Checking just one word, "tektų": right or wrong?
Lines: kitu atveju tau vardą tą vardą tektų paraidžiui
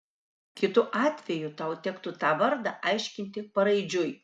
wrong